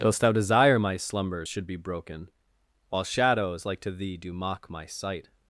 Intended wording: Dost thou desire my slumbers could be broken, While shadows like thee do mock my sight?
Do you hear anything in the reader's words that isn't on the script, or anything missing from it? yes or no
yes